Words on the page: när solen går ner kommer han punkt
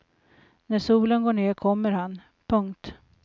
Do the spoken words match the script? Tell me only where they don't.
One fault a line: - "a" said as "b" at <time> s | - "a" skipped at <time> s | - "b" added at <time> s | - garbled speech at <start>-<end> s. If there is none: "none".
none